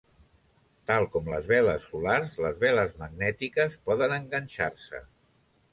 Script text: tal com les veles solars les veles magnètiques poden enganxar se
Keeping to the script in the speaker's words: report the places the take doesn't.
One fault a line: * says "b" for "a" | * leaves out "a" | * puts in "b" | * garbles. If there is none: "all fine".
all fine